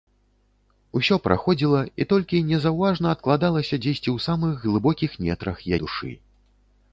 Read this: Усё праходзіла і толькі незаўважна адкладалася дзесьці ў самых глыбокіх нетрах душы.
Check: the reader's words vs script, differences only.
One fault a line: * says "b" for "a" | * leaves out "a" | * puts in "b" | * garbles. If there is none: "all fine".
all fine